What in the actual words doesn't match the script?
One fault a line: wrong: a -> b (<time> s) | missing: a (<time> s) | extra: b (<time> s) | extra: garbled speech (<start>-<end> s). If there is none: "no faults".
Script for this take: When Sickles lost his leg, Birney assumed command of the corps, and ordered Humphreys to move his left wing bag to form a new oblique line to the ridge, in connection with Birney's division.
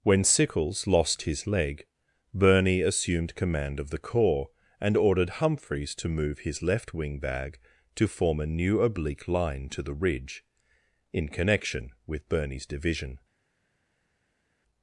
no faults